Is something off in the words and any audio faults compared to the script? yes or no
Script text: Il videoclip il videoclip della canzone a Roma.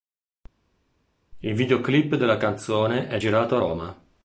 yes